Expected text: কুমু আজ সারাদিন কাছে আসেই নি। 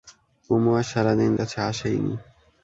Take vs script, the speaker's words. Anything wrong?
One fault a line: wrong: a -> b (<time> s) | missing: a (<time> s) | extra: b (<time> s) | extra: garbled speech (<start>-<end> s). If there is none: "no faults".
no faults